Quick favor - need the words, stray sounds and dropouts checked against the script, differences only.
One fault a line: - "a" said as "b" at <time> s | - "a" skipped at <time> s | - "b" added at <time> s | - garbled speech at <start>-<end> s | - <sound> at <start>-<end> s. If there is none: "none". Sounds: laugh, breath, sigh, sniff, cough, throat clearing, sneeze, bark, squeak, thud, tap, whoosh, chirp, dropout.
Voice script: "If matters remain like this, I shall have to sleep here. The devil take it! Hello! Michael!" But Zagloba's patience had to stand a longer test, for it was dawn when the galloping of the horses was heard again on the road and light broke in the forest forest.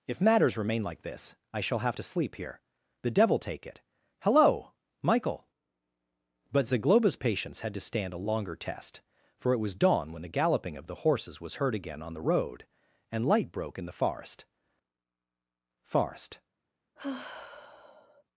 - sigh at 17.0-18.2 s